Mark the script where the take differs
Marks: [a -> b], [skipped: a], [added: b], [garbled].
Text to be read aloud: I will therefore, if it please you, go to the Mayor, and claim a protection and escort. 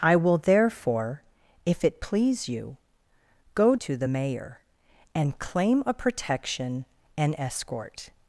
I will therefore, if it please you, go to the Mayor, and claim a protection and escort.